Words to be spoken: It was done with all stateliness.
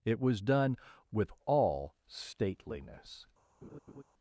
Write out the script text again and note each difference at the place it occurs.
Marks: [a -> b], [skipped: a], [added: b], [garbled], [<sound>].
It was done with all stateliness. [laugh]